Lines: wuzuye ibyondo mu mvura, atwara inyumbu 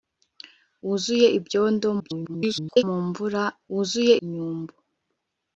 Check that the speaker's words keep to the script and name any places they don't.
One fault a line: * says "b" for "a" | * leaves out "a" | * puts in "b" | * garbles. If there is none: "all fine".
* garbles
* says "wuzuye" for "atwara"